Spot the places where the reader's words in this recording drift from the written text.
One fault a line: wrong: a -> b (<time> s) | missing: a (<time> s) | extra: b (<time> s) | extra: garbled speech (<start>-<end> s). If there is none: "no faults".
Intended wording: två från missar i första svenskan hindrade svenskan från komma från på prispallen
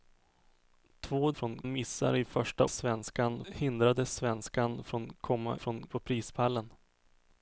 no faults